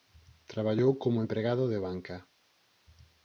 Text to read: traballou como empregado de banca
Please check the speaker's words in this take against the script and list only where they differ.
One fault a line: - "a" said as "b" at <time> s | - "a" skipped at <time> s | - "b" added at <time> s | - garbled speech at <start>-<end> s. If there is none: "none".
none